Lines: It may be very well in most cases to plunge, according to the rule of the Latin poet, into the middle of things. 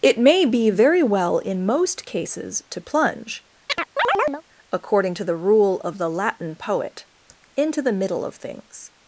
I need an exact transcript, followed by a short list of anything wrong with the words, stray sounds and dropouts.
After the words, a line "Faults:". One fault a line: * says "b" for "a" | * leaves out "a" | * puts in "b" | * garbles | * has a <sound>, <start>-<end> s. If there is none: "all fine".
It may be very well in most cases to plunge, according to the rule of the Latin poet, into the middle of things.
Faults:
* has a chirp, 3.7-4.4 s